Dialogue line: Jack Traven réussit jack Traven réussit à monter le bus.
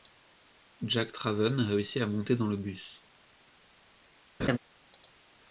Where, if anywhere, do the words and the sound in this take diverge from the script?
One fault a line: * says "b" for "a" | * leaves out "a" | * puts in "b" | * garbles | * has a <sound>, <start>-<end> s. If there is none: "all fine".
* leaves out "jack Traven réussit"
* puts in "dans"
* has a laugh, 4.4-4.6 s